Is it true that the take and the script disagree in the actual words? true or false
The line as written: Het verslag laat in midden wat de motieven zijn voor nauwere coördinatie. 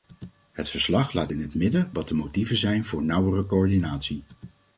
true